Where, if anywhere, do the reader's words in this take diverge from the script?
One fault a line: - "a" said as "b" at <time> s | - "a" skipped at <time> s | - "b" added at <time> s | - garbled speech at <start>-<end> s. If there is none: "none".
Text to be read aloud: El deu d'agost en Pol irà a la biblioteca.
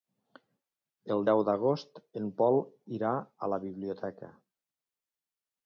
none